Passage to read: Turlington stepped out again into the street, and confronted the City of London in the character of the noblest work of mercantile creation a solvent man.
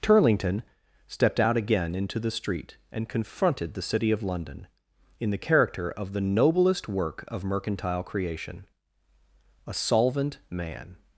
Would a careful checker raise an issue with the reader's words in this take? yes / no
no